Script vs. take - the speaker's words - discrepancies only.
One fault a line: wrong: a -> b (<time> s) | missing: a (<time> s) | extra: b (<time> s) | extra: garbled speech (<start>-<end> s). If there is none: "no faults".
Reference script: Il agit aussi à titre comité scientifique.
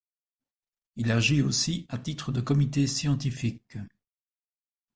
extra: de (2.3 s)